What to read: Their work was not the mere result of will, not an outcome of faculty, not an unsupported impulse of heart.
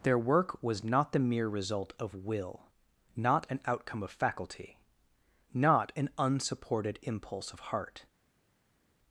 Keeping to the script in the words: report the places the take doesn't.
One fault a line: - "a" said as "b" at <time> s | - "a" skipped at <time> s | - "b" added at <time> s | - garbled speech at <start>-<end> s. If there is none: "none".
none